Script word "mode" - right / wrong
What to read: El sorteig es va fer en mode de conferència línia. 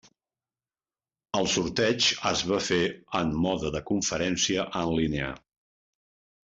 right